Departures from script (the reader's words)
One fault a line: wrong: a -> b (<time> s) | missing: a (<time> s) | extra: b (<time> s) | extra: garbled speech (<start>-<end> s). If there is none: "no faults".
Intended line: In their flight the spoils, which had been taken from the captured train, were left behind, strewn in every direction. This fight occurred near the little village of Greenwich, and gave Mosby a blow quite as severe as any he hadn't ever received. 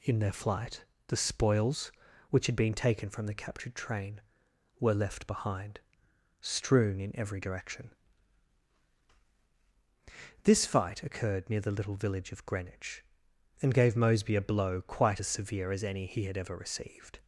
wrong: hadn't -> had (16.2 s)